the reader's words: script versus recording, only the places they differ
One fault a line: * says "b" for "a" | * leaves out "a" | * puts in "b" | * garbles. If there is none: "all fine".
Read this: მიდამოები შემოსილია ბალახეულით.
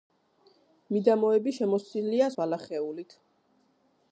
all fine